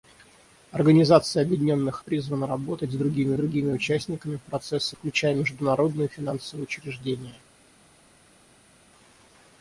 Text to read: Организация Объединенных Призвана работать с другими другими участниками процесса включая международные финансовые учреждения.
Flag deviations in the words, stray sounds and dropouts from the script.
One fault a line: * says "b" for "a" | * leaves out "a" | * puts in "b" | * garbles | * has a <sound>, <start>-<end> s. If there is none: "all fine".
all fine